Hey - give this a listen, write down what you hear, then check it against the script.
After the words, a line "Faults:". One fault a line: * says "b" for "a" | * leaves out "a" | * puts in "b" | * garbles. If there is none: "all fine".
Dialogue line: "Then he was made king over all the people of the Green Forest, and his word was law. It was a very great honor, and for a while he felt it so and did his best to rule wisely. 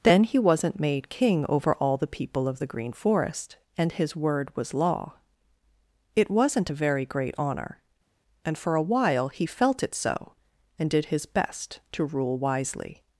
"Then he wasn't made king over all the people of the Green Forest, and his word was law. It wasn't a very great honor, and for a while he felt it so and did his best to rule wisely.
Faults:
* says "wasn't" for "was"
* says "wasn't" for "was"